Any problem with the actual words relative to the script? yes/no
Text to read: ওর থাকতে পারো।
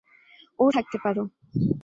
no